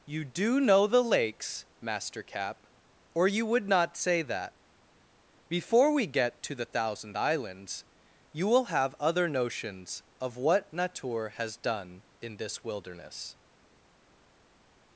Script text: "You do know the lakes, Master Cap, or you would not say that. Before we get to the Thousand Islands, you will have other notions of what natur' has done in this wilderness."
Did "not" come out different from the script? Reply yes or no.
no